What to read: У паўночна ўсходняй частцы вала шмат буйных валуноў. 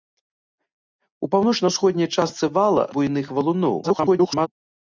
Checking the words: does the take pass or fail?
fail